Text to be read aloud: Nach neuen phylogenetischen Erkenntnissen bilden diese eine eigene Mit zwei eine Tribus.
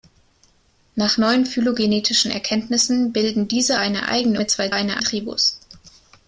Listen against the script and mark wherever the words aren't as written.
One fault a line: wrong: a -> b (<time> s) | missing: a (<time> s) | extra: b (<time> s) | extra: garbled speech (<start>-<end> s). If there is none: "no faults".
no faults